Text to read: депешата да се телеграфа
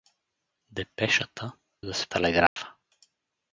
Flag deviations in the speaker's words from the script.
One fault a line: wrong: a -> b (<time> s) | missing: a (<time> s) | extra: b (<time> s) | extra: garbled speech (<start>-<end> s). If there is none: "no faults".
no faults